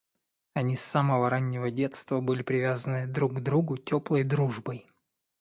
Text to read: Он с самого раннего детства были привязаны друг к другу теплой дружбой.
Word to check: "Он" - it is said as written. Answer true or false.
false